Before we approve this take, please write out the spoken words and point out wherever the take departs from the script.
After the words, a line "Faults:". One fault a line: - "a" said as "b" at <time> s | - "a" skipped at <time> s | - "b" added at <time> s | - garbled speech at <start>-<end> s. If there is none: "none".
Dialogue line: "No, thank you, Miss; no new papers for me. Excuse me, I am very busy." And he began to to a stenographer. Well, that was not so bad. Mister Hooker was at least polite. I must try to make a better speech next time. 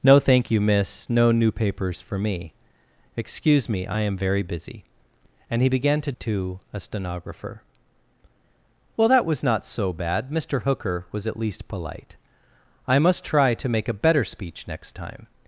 "No, thank you, Miss; no new papers for me. Excuse me, I am very busy." And he began to to a stenographer. Well, that was not so bad. Mister Hooker was at least polite. I must try to make a better speech next time.
Faults:
none